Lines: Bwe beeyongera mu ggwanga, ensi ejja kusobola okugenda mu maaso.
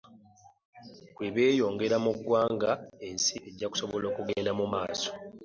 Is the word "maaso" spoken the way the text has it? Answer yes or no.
yes